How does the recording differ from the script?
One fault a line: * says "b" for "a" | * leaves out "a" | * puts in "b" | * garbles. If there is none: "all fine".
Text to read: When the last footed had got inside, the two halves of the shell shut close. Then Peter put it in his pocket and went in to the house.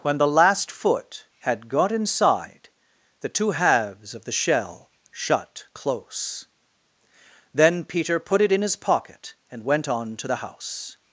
* says "foot" for "footed"
* says "on" for "in"